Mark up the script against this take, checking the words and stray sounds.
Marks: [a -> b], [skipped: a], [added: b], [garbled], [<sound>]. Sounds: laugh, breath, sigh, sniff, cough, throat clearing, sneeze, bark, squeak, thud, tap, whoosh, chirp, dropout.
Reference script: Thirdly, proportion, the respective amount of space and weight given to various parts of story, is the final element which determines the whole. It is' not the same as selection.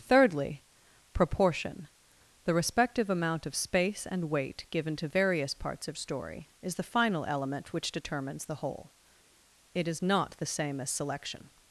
Thirdly, proportion, the respective amount of space and weight given to various parts of story, is the final element which determines the whole. It is' not the same as selection.